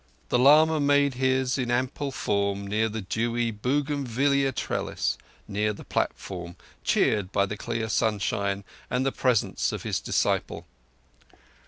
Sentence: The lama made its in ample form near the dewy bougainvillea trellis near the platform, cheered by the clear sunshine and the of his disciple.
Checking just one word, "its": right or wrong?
wrong